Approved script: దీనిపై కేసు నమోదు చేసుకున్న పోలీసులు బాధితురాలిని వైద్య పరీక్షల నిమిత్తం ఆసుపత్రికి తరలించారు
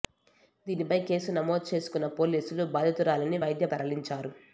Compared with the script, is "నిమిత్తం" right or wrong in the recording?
wrong